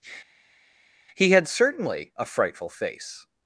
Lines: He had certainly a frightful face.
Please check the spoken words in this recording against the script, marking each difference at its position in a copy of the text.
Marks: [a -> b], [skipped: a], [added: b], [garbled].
He had certainly a frightful face.